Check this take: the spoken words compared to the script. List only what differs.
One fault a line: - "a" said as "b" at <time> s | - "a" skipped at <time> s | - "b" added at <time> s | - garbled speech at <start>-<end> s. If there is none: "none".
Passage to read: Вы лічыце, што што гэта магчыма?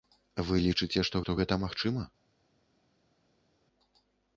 none